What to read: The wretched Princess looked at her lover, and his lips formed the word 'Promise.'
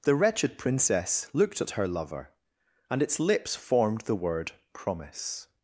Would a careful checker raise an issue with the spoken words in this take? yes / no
yes